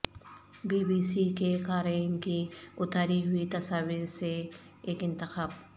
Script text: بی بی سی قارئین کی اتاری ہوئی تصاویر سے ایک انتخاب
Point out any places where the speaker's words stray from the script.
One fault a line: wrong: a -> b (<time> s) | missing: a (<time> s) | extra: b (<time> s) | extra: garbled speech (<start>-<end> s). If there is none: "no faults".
extra: کے (1.4 s)